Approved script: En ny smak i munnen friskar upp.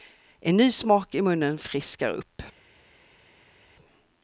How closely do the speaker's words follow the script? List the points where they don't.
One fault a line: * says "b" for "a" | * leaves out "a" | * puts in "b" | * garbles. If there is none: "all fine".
all fine